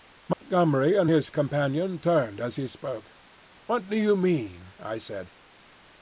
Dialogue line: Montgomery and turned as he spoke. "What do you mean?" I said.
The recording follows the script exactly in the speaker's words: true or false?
false